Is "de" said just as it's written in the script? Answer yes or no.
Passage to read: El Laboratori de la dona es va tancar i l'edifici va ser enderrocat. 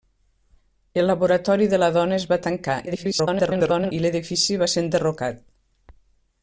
yes